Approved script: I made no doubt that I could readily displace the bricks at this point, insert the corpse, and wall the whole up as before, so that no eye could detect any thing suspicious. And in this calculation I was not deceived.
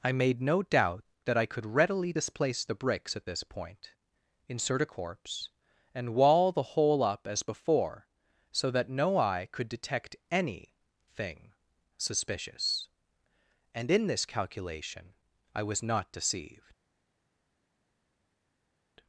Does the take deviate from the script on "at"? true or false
false